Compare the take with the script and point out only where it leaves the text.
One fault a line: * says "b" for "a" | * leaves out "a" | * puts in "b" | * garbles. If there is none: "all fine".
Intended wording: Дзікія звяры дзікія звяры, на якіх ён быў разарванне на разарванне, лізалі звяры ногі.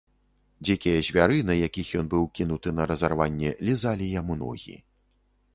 * leaves out "дзікія звяры"
* says "кінуты" for "разарванне"
* says "яму" for "звяры"